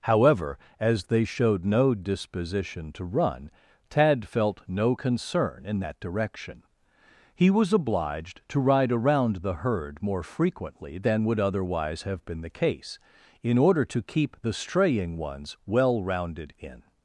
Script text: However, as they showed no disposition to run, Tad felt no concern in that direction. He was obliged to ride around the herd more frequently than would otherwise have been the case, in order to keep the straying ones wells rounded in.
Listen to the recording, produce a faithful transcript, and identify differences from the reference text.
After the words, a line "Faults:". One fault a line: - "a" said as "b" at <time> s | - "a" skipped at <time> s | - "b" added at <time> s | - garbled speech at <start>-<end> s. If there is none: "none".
However, as they showed no disposition to run, Tad felt no concern in that direction. He was obliged to ride around the herd more frequently than would otherwise have been the case, in order to keep the straying ones well rounded in.
Faults:
- "wells" said as "well" at 15.7 s